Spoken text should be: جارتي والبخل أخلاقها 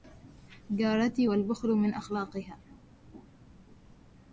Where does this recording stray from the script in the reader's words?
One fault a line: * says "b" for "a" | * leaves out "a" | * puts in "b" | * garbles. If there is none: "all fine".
* puts in "من"